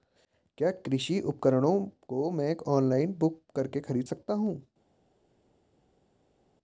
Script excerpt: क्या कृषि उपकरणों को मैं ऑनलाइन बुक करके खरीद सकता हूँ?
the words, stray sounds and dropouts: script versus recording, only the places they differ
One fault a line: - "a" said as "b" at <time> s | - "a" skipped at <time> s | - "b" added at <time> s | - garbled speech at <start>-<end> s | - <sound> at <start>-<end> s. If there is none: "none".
none